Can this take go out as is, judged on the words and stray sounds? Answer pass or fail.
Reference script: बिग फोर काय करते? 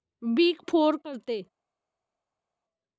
fail